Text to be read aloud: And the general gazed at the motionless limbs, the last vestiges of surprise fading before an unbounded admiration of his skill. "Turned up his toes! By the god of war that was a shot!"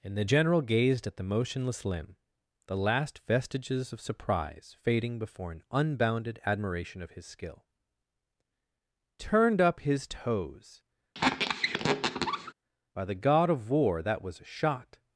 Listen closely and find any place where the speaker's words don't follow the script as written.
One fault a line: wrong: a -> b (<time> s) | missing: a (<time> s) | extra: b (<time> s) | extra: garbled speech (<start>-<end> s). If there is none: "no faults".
wrong: limbs -> limb (1.8 s)